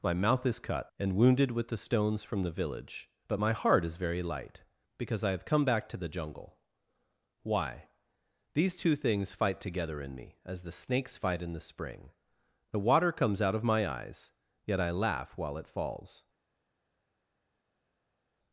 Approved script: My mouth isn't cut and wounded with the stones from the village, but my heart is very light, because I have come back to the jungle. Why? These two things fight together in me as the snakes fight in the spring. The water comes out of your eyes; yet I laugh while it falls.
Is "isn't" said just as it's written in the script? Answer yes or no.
no